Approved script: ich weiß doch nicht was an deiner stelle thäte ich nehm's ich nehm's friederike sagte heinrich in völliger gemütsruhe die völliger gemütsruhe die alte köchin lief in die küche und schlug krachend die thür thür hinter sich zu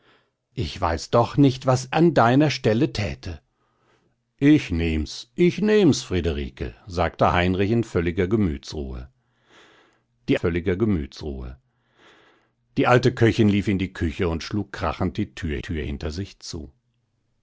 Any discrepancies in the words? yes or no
no